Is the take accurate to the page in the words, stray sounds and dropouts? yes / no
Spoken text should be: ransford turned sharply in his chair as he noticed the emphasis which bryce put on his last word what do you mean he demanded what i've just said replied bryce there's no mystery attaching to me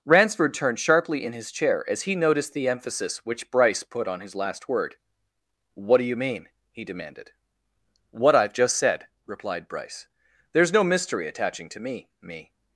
no